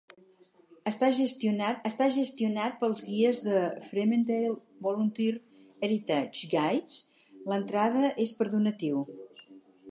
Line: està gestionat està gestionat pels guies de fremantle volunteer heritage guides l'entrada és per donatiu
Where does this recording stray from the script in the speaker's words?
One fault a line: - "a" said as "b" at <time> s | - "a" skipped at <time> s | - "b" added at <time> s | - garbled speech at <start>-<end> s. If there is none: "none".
none